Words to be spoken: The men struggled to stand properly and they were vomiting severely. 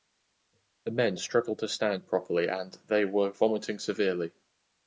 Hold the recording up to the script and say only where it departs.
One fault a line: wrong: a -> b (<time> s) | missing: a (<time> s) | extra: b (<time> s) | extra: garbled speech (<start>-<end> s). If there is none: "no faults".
no faults